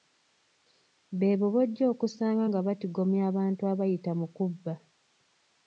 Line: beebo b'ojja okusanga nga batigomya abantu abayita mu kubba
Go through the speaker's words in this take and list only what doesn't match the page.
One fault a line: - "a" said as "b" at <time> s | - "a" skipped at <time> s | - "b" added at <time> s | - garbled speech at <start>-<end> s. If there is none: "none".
none